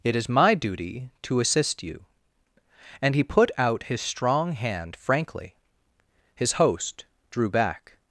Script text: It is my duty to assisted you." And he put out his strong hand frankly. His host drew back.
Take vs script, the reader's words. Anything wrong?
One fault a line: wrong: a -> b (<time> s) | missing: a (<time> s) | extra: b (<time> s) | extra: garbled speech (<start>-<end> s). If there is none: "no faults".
wrong: assisted -> assist (1.4 s)